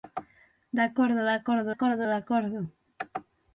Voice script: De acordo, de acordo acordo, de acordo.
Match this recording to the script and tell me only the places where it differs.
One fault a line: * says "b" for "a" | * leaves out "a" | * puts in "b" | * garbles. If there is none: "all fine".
all fine